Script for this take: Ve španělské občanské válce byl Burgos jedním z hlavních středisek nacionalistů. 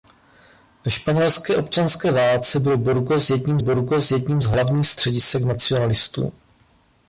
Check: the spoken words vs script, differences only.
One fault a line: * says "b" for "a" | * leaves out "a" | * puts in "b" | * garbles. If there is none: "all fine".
* puts in "Burgos jedním"